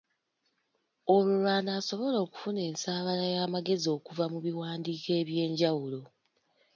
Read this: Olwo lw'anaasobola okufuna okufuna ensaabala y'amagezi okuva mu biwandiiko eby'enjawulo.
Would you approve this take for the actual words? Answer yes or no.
no